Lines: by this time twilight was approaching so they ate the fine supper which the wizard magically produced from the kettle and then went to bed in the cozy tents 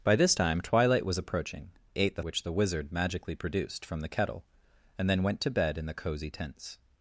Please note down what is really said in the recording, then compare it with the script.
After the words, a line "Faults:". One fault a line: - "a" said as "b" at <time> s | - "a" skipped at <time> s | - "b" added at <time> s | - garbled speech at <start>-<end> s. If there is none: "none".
by this time twilight was approaching ate the which the wizard magically produced from the kettle and then went to bed in the cozy tents
Faults:
- "so they" skipped at 1.7 s
- "fine supper" skipped at 2.2 s